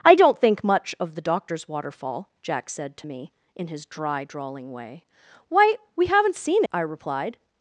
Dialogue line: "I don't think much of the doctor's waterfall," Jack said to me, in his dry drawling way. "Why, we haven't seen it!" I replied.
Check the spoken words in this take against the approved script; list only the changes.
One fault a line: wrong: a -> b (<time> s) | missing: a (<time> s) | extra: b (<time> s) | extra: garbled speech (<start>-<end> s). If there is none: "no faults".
missing: it (6.6 s)